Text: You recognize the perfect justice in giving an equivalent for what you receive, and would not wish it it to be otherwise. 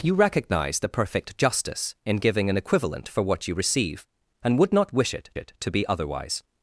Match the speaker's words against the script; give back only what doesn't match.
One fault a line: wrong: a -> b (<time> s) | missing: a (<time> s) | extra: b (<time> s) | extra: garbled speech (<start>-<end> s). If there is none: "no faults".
no faults